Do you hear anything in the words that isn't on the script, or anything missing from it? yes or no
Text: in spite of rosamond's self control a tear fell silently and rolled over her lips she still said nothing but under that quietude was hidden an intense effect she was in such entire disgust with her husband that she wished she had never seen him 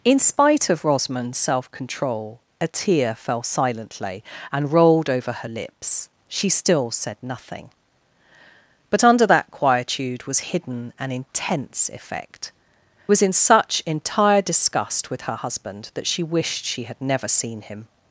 yes